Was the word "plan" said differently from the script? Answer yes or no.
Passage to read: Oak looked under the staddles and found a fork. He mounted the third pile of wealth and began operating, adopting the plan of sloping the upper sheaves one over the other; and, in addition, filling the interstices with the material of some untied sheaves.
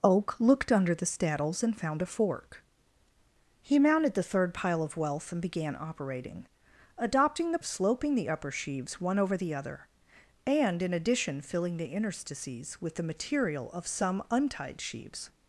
yes